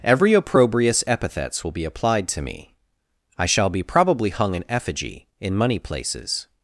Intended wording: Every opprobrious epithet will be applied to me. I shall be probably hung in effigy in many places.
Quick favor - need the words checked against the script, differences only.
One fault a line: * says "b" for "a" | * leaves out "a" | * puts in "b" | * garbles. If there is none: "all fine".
* says "epithets" for "epithet"
* says "money" for "many"